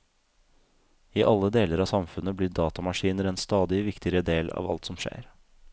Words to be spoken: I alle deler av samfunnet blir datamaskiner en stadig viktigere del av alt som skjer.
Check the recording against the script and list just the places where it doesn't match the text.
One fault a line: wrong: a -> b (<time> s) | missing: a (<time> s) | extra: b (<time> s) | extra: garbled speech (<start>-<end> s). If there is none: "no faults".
no faults